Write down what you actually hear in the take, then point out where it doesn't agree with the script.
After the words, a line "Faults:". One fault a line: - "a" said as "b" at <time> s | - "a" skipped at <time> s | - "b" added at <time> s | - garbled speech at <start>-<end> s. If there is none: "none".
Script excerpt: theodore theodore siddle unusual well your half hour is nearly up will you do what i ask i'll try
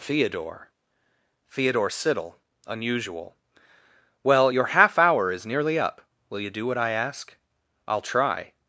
theodore theodore siddle unusual well your half hour is nearly up will you do what i ask i'll try
Faults:
none